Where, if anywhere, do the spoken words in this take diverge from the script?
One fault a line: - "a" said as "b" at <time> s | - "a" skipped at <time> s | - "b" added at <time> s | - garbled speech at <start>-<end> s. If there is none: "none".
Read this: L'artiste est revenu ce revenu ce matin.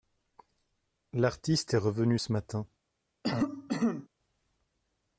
- "revenu ce" skipped at 2.3 s